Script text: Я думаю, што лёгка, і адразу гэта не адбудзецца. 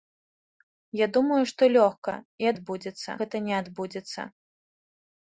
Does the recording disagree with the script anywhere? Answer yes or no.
yes